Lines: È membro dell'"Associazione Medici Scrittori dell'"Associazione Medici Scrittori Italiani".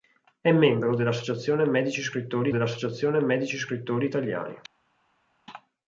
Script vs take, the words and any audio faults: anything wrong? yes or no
no